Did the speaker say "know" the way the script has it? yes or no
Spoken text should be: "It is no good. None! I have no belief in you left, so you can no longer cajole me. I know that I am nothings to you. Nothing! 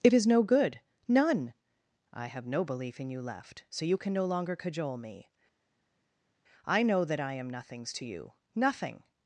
yes